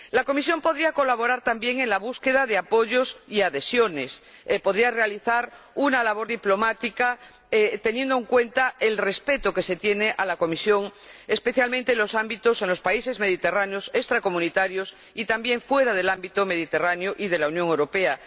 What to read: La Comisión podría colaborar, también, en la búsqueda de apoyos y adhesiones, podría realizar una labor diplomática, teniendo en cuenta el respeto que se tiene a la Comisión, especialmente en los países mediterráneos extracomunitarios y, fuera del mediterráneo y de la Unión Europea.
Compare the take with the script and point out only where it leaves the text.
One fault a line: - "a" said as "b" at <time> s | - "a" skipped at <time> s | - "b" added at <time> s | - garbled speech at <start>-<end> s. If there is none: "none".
- "también" added at 15.3 s
- "ámbito" added at 16.1 s